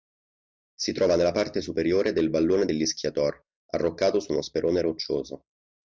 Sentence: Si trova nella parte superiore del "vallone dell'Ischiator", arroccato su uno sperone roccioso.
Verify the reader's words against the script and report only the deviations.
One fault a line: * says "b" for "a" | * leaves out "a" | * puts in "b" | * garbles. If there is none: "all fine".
all fine